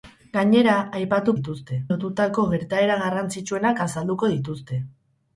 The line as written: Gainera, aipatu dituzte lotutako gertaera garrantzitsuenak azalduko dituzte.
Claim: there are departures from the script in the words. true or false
false